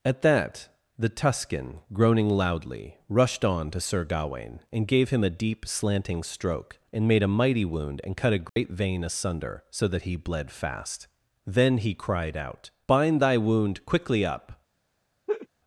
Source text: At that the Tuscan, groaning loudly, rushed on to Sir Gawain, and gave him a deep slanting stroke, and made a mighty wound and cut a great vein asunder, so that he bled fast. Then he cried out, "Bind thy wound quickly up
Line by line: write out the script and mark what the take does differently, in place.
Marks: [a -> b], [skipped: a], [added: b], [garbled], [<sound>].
At that the Tuscan, groaning loudly, rushed on to Sir Gawain, and gave him a deep slanting stroke, and made a mighty wound and cut a great [dropout] vein asunder, so that he bled fast. Then he cried out, "Bind thy wound quickly up [laugh]